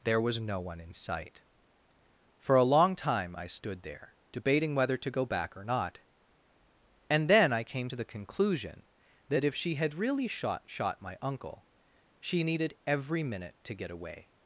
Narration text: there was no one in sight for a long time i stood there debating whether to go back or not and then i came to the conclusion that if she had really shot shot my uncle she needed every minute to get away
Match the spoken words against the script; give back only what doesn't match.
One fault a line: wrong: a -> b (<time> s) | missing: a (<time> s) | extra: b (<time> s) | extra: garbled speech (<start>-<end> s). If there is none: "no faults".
no faults